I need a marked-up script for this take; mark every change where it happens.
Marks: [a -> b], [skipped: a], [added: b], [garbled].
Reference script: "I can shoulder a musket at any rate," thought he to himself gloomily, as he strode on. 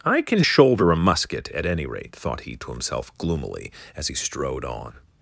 "I can shoulder a musket at any rate," thought he to himself gloomily, as he strode on.